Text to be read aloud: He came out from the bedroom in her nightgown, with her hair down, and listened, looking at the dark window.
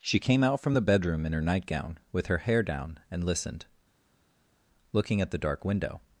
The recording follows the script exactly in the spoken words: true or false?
false